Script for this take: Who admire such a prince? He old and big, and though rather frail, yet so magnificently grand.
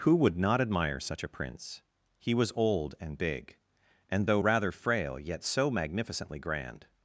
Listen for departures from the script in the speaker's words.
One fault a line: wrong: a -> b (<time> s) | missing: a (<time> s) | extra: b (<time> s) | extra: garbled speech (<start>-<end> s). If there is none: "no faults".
extra: would not (0.1 s)
extra: was (2.3 s)